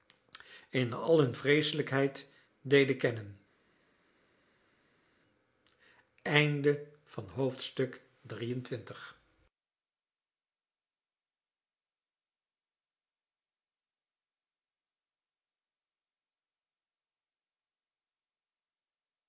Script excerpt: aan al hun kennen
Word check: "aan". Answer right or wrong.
wrong